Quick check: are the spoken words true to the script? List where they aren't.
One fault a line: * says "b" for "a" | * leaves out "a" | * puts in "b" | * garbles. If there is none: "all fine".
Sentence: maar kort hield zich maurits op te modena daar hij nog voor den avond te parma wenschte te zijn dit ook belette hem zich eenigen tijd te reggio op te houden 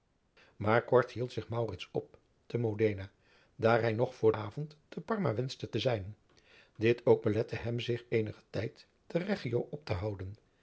* leaves out "den"